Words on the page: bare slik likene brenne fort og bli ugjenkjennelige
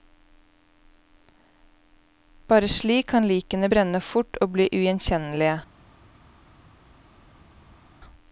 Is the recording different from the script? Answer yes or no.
yes